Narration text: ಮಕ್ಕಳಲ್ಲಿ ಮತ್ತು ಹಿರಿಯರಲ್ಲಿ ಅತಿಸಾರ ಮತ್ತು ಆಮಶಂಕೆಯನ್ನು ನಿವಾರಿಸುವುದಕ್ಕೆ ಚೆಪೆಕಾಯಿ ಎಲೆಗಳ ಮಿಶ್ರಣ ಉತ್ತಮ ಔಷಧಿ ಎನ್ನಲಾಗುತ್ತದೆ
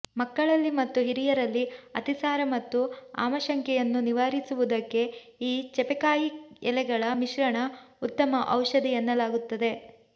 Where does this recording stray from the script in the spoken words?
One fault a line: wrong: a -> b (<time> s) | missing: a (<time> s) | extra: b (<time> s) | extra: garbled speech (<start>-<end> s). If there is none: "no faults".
extra: ಈ (5.4 s)